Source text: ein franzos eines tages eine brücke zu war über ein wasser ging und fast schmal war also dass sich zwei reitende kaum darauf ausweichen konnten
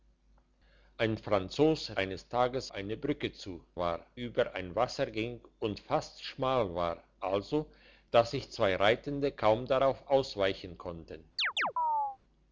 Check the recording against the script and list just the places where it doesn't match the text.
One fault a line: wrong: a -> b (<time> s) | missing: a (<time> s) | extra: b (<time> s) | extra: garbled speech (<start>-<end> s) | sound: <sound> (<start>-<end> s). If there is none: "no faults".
sound: chirp (11.4-12.2 s)